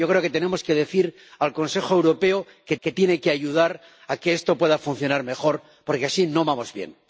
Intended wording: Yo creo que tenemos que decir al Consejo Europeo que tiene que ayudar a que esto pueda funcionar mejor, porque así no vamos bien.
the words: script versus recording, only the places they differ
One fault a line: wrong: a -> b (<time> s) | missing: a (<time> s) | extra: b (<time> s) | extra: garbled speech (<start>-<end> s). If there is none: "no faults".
extra: que (2.8 s)